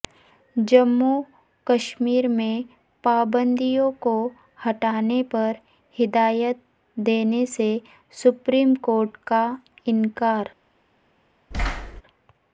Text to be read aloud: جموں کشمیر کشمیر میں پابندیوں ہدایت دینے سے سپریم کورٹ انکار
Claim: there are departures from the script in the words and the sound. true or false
true